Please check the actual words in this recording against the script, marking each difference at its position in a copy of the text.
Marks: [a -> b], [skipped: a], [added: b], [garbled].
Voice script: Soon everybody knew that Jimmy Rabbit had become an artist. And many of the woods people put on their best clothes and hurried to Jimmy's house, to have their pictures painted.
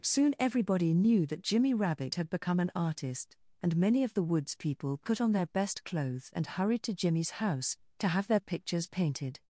Soon everybody knew that Jimmy Rabbit had become an artist. And many of the woods people put on their best clothes and hurried to Jimmy's house, to have their pictures painted.